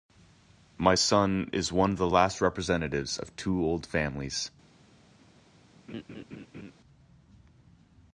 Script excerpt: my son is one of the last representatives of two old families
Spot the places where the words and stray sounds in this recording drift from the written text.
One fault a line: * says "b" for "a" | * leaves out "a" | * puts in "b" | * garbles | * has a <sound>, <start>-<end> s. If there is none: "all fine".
* has a laugh, 5.9-6.7 s